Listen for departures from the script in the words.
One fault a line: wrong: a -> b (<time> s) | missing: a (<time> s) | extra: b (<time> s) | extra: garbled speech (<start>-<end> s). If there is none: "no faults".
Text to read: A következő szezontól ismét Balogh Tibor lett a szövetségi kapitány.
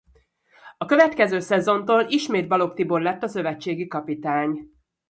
no faults